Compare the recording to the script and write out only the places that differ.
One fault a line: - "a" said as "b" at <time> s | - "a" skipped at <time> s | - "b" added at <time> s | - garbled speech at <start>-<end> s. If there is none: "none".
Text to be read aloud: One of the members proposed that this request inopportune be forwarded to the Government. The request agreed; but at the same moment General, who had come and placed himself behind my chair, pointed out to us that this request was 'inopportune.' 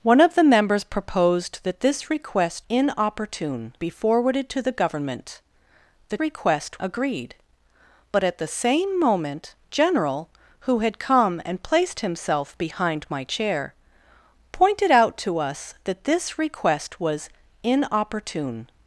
none